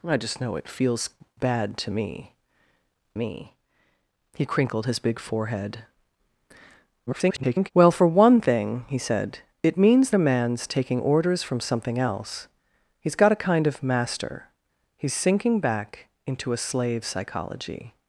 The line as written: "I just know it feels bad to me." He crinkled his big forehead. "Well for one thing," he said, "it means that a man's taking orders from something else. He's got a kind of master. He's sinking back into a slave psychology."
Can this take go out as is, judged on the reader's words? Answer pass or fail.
fail